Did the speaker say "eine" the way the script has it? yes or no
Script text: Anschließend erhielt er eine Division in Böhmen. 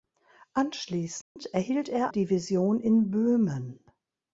no